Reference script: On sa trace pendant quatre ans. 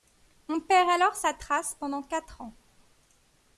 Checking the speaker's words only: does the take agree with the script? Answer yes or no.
no